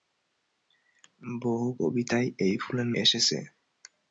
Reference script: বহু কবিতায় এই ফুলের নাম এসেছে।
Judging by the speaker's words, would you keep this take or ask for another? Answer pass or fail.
fail